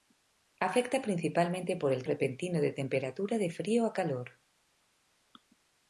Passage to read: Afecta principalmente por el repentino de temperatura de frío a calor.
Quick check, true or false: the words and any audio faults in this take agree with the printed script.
true